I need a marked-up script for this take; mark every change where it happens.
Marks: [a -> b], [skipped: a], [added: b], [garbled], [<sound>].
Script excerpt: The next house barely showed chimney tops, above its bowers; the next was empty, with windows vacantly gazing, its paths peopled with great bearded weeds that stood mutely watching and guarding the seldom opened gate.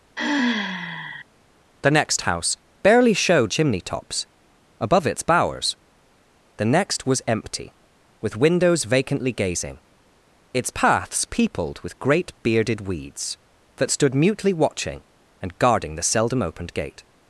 [sigh] The next house barely showed chimney tops, above its bowers; the next was empty, with windows vacantly gazing, its paths peopled with great bearded weeds that stood mutely watching and guarding the seldom opened gate.